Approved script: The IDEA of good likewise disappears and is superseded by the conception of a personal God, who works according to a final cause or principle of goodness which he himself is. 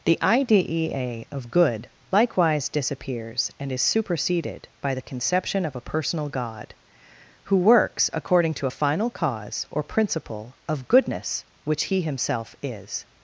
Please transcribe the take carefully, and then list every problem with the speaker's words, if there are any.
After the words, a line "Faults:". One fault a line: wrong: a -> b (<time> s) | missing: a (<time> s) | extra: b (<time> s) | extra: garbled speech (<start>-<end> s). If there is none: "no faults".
The IDEA of good likewise disappears and is superseded by the conception of a personal God, who works according to a final cause or principle of goodness which he himself is.
Faults:
no faults